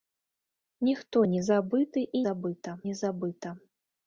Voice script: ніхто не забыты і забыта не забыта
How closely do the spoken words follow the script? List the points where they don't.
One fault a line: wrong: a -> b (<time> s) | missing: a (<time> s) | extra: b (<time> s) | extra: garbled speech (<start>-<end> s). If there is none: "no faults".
no faults